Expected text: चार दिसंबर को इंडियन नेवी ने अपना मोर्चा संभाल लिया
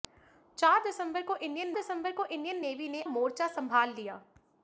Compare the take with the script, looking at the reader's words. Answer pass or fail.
fail